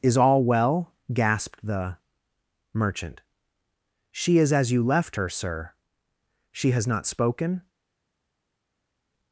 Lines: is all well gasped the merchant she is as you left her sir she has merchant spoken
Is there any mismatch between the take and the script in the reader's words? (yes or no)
yes